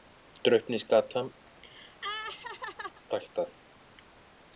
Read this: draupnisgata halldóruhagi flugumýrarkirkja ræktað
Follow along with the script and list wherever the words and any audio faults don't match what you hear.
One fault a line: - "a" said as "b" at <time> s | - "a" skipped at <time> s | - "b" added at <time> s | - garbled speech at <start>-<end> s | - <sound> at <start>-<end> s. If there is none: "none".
- "halldóruhagi flugumýrarkirkja" skipped at 1.2 s
- laugh at 1.5-3.0 s